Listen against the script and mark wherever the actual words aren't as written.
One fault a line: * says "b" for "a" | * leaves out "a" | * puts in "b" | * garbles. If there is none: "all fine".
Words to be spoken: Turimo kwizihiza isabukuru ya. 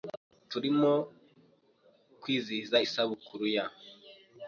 all fine